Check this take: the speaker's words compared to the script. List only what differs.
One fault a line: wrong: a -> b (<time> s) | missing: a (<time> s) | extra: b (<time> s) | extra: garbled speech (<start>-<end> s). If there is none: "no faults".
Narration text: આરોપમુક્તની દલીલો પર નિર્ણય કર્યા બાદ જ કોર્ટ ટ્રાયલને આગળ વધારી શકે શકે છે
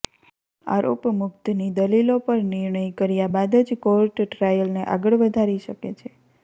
missing: શકે (6.0 s)